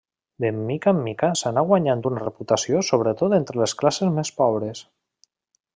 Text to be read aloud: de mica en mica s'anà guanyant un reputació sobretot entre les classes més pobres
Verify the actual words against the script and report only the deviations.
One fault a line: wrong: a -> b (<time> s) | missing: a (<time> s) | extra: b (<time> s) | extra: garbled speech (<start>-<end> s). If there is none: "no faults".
wrong: un -> una (2.1 s)